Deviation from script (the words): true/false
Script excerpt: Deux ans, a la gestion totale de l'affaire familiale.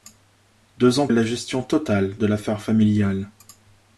false